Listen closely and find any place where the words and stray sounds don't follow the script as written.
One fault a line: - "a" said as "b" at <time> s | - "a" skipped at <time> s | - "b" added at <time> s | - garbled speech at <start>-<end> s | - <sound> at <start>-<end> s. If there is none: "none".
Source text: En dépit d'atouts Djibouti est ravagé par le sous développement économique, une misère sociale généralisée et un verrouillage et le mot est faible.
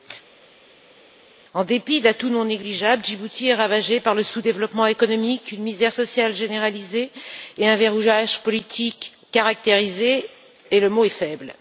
- "non négligeables" added at 2.3 s
- "politique caractérisé" added at 8.4 s